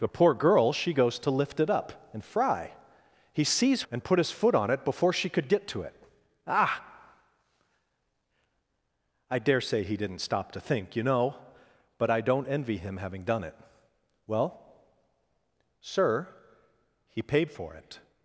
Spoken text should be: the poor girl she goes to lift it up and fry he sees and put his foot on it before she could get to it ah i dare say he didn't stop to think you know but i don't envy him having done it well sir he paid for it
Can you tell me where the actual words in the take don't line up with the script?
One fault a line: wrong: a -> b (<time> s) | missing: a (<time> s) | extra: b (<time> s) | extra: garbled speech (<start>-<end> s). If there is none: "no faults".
no faults